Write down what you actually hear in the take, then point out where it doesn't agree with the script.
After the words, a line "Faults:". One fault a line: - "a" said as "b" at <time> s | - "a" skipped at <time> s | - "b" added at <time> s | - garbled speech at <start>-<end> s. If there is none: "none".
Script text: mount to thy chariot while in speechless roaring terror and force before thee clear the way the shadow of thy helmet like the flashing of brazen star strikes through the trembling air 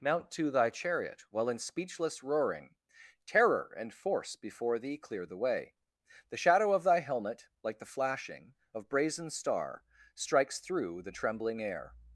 mount to thy chariot while in speechless roaring terror and force before thee clear the way the shadow of thy helmet like the flashing of brazen star strikes through the trembling air
Faults:
none